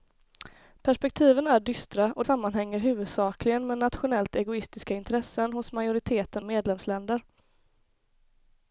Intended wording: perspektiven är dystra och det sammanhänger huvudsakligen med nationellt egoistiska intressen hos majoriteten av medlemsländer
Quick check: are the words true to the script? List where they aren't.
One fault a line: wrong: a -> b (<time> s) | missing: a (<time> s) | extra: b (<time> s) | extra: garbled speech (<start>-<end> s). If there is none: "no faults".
missing: det (2.2 s)
missing: av (6.4 s)